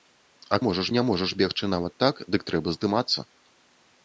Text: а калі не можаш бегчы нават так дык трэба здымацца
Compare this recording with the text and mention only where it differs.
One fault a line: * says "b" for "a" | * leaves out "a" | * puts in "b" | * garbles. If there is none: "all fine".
* says "можаш" for "калі"